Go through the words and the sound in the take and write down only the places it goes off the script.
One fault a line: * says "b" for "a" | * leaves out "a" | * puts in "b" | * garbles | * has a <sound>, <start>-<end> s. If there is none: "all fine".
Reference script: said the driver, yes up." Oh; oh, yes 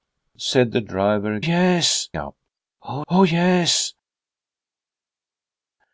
all fine